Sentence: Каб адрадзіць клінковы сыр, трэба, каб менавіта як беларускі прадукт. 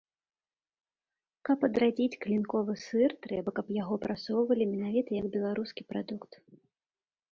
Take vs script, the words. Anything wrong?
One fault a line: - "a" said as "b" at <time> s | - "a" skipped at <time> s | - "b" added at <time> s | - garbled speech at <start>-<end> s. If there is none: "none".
- "яго прасоўвалі" added at 3.8 s